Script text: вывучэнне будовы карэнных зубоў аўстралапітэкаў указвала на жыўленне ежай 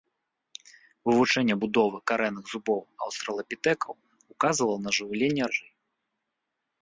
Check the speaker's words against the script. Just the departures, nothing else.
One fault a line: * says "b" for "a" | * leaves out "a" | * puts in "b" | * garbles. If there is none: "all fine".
all fine